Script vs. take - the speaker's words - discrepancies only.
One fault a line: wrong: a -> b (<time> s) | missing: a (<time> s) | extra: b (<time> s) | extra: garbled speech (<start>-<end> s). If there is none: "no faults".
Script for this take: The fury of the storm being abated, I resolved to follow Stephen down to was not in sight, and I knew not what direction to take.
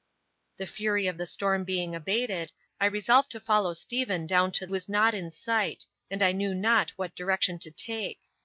no faults